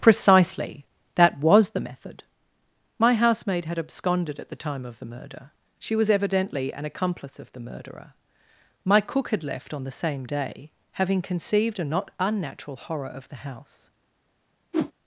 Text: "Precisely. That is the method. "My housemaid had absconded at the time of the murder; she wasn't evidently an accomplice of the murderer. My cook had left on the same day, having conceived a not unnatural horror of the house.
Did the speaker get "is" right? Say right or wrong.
wrong